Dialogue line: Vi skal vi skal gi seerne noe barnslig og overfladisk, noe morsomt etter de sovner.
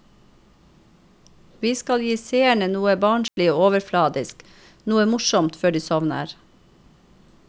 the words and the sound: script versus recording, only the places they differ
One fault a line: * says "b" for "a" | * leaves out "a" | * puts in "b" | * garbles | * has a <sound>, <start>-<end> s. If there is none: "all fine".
* leaves out "vi skal"
* has a dropout, 3.3-3.4 s
* says "før" for "etter"